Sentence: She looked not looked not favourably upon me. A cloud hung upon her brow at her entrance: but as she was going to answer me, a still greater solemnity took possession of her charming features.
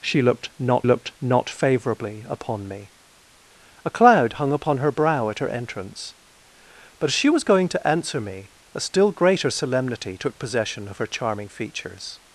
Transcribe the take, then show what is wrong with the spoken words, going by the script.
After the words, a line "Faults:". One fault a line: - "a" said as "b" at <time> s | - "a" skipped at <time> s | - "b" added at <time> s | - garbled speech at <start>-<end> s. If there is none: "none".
She looked not looked not favourably upon me. A cloud hung upon her brow at her entrance: but as she was going to answer me, a still greater solemnity took possession of her charming features.
Faults:
none